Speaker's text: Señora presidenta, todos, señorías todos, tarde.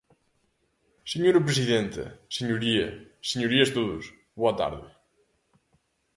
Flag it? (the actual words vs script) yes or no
yes